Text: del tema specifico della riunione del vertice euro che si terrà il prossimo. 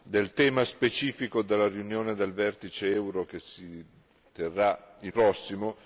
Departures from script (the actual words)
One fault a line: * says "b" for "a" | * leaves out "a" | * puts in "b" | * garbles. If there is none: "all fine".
all fine